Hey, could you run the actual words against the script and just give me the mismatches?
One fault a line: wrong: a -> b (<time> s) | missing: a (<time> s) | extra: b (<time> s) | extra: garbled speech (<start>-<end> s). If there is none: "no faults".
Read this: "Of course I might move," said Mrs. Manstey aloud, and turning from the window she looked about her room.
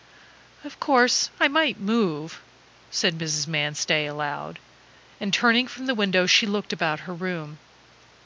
no faults